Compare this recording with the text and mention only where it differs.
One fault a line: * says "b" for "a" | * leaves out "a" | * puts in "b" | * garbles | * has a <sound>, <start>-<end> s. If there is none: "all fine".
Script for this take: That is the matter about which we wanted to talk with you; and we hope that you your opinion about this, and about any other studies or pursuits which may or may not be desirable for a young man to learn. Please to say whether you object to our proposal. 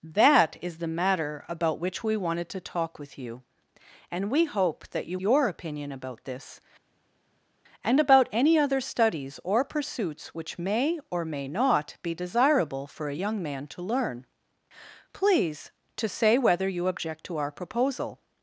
all fine